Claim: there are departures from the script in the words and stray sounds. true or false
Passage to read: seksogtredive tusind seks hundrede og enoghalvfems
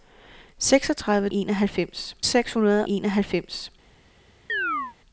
true